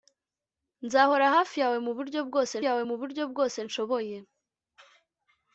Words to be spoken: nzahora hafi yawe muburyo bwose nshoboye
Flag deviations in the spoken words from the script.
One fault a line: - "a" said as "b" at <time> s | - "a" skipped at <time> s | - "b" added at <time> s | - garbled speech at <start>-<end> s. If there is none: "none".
- "yawe muburyo bwose" added at 2.7 s